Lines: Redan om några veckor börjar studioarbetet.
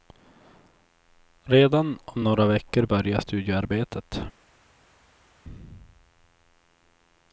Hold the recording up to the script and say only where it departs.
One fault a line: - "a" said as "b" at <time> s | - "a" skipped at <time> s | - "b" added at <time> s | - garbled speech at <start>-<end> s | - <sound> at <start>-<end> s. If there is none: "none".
none